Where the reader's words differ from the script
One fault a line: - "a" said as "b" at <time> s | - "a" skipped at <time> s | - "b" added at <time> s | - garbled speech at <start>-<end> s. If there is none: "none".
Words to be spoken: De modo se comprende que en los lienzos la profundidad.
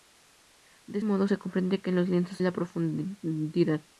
none